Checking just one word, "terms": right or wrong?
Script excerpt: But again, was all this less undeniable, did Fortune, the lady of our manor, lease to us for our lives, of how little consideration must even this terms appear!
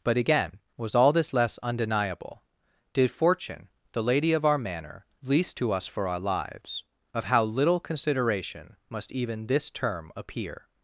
wrong